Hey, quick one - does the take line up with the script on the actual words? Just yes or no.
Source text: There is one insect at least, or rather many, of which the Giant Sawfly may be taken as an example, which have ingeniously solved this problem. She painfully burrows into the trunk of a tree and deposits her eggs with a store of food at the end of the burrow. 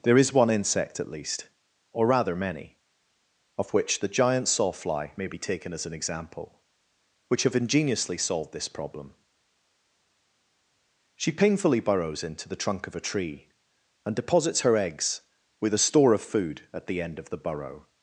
yes